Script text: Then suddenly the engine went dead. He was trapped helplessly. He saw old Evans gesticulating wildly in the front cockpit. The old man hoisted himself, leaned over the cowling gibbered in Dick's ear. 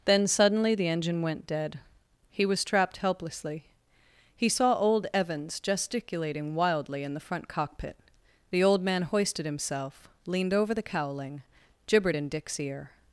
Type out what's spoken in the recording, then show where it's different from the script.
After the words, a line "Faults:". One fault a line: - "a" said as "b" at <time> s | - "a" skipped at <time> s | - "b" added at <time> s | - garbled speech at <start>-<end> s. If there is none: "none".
Then suddenly the engine went dead. He was trapped helplessly. He saw old Evans gesticulating wildly in the front cockpit. The old man hoisted himself, leaned over the cowling gibbered in Dick's ear.
Faults:
none